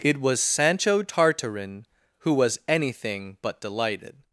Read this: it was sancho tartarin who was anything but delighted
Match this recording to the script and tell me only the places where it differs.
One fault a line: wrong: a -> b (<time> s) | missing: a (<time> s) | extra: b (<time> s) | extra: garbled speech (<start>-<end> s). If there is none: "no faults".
no faults